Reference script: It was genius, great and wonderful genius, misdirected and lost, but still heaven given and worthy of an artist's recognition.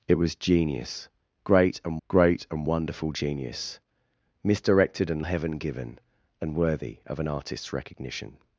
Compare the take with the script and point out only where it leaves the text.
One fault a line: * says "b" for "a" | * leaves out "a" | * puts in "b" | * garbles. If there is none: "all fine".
* puts in "great and"
* leaves out "lost but still"